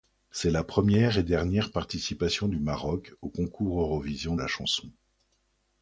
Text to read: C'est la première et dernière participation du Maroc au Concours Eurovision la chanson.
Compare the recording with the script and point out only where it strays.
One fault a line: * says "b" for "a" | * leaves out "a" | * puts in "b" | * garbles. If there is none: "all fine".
all fine